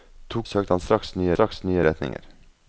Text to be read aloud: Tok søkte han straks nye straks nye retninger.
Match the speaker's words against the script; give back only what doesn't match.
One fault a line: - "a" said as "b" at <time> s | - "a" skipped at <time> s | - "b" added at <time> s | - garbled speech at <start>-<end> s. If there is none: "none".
none